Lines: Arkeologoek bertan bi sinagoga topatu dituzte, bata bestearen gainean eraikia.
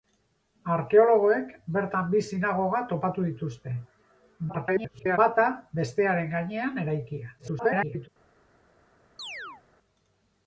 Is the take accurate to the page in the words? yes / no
no